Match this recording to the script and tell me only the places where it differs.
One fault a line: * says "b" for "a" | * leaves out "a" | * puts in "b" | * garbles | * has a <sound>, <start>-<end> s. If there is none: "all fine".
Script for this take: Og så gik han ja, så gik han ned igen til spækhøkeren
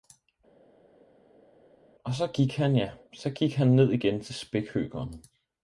all fine